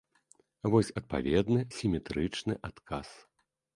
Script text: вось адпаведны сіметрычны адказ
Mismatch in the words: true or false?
false